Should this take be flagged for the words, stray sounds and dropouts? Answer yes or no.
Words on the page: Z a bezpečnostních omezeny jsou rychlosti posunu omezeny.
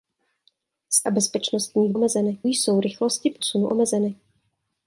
no